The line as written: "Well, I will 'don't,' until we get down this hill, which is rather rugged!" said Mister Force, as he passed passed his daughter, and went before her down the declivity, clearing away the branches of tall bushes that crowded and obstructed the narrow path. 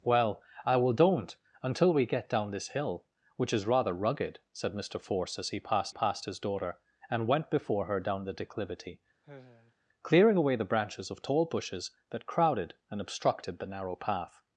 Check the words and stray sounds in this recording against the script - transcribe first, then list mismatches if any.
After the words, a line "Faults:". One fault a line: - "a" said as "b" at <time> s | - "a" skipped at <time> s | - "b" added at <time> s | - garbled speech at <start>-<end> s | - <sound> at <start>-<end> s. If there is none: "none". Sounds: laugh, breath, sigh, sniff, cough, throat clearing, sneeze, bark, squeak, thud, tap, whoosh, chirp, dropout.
"Well, I will 'don't,' until we get down this hill, which is rather rugged!" said Mister Force, as he passed passed his daughter, and went before her down the declivity, clearing away the branches of tall bushes that crowded and obstructed the narrow path.
Faults:
- sigh at 9.2-9.7 s